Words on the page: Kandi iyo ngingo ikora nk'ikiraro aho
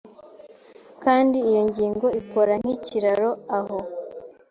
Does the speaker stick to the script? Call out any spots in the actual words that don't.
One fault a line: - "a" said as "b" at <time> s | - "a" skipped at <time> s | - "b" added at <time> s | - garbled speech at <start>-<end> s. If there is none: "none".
none